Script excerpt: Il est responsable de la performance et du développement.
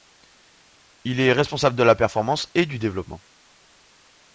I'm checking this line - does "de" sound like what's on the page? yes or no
yes